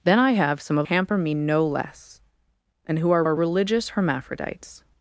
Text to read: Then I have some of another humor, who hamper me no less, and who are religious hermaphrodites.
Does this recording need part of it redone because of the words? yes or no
yes